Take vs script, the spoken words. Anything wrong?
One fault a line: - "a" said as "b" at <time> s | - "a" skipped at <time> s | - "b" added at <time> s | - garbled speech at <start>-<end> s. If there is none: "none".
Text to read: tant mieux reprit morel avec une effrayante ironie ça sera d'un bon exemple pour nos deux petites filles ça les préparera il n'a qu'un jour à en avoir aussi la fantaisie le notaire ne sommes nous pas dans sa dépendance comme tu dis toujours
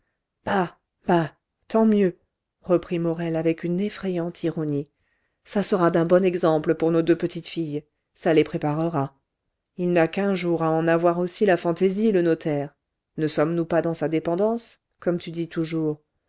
none